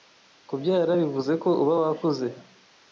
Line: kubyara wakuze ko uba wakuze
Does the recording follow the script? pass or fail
fail